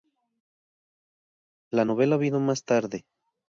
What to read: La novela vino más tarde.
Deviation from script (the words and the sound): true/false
false